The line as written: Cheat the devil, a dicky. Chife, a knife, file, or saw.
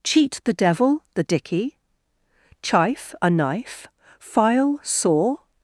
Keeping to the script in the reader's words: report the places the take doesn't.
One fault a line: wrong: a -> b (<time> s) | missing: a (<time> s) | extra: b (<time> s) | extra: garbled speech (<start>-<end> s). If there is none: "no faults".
wrong: a -> the (1.1 s)
missing: or (4.8 s)